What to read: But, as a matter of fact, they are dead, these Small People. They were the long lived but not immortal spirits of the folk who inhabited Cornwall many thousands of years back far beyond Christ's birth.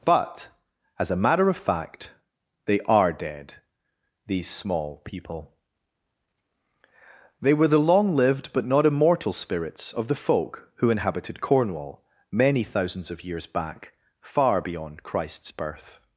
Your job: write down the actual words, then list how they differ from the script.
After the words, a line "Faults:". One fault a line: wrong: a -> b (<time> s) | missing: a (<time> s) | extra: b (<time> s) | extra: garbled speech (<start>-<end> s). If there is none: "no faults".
But, as a matter of fact, they are dead, these Small People. They were the long lived but not immortal spirits of the folk who inhabited Cornwall many thousands of years back far beyond Christ's birth.
Faults:
no faults